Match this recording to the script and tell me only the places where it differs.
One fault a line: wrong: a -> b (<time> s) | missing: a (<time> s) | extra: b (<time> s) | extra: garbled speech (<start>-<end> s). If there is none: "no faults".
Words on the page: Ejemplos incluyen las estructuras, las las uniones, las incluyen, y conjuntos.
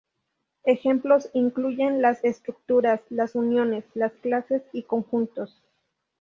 missing: las (3.3 s)
wrong: incluyen -> clases (4.2 s)